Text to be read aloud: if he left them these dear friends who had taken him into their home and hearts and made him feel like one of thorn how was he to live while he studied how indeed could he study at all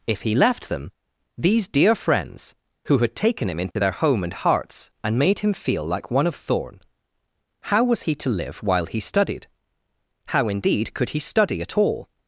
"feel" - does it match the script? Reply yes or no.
yes